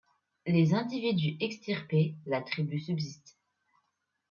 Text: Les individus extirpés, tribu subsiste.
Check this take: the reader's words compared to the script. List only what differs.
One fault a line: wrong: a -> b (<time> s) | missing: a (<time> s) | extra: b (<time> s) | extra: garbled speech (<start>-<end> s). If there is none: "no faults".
extra: la (2.2 s)